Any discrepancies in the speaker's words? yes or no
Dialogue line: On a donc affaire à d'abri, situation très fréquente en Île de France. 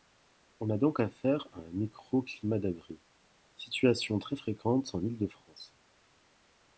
yes